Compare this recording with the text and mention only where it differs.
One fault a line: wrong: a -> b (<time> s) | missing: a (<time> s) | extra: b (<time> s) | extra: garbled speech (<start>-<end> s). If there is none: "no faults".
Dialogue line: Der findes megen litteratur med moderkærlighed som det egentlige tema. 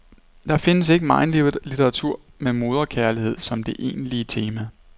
extra: ikke (0.9 s)